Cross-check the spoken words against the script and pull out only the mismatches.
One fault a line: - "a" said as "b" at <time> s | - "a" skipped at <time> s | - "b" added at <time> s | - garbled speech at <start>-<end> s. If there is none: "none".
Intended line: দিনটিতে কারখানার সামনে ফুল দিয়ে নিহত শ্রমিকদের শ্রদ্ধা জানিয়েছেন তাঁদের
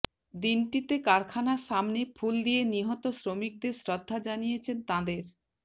none